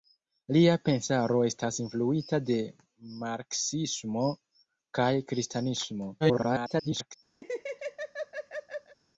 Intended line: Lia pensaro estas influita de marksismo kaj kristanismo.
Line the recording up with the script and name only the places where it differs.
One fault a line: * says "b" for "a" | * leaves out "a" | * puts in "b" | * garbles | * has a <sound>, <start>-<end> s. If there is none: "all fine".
* garbles
* has a laugh, 7.4-9.0 s